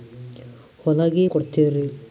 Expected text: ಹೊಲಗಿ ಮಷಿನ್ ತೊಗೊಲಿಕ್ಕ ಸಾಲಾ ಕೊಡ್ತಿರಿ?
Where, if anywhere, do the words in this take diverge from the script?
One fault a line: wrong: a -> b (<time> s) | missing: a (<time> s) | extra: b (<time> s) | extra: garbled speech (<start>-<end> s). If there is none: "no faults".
missing: ಮಷಿನ್ ತೊಗೊಲಿಕ್ಕ ಸಾಲಾ (1.3 s)